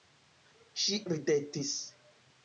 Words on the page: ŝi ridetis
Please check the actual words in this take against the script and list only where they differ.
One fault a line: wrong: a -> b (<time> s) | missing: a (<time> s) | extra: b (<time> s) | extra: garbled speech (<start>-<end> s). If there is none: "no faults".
no faults